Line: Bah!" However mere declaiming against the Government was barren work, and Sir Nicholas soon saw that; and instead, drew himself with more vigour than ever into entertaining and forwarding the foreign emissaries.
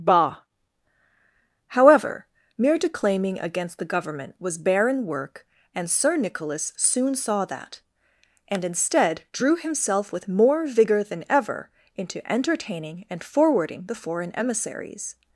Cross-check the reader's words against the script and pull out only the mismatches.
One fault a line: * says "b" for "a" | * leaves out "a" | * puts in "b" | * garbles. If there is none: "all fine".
all fine